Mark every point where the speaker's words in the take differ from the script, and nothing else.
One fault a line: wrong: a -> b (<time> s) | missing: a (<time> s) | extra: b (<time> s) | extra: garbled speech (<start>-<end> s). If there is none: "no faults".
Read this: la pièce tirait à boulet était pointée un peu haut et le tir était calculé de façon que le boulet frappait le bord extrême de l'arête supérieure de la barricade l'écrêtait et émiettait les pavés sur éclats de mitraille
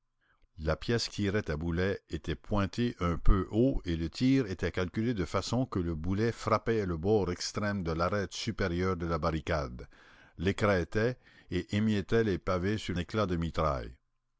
no faults